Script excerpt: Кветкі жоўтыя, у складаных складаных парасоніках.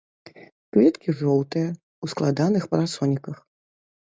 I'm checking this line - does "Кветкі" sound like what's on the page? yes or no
yes